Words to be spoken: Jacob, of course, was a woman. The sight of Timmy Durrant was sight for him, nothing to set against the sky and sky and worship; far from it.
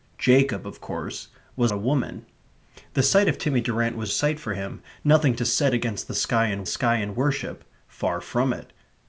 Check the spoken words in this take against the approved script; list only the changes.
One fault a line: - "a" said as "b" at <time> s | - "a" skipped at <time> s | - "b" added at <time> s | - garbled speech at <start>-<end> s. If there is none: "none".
none